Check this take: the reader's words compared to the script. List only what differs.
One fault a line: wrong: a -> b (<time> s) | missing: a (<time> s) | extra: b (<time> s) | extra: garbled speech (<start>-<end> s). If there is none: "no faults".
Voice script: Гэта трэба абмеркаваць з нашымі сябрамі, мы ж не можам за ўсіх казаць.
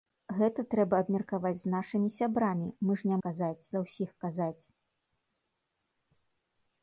wrong: можам -> казаць (3.3 s)